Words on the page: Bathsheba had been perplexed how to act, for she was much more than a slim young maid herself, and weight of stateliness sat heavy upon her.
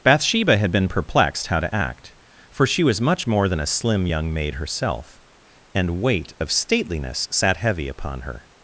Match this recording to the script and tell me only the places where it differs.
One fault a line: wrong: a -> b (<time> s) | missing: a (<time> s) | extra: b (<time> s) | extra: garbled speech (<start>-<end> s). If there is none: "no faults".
no faults